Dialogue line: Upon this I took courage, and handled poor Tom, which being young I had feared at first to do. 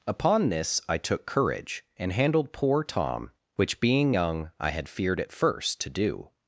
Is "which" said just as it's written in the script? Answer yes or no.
yes